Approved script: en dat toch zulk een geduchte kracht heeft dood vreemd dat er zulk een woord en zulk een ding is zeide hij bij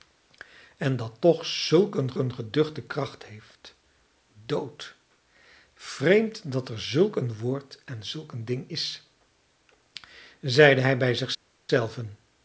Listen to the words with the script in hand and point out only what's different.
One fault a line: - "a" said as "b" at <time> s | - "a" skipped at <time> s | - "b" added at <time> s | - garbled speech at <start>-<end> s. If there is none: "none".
- "een" added at 2.2 s